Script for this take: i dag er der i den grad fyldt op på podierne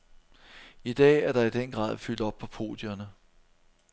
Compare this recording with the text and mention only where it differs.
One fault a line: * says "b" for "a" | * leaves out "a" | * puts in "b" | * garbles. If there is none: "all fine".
all fine